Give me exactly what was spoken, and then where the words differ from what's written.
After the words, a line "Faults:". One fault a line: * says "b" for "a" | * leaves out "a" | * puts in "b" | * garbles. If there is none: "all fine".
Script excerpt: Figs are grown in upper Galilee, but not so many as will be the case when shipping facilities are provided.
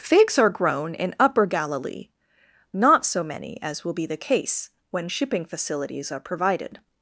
Figs are grown in upper Galilee, not so many as will be the case when shipping facilities are provided.
Faults:
* leaves out "but"